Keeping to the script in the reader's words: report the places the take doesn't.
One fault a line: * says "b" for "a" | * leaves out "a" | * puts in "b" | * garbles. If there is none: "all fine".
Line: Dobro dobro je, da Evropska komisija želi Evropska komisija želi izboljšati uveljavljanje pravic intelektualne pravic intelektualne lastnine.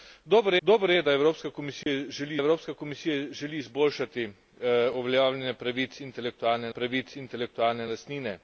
all fine